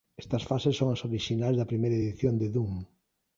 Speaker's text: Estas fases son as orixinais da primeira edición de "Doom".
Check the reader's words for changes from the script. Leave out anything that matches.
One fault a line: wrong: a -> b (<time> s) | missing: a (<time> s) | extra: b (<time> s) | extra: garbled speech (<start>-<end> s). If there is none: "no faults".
no faults